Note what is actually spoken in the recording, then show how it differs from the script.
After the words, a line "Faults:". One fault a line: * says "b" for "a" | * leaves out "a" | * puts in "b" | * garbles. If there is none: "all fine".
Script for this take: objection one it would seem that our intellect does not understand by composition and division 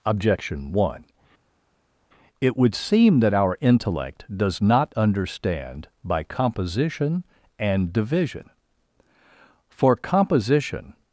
objection one it would seem that our intellect does not understand by composition and division for composition
Faults:
* puts in "for composition"